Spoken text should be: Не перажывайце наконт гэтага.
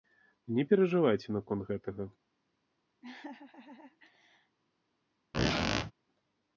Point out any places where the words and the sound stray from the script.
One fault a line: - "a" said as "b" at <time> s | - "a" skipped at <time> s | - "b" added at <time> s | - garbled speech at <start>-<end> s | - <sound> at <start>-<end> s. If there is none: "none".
- laugh at 3.0-4.6 s
- squeak at 5.3-5.9 s